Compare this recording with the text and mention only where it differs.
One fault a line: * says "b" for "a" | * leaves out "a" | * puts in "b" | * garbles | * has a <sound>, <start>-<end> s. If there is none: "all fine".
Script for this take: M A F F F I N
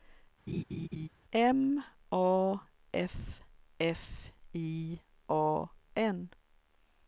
* has a laugh, 0.5-1.1 s
* says "I A" for "F I"